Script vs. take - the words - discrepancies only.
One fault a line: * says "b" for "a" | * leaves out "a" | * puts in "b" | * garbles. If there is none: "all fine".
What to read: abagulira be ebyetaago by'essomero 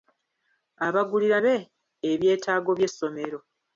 all fine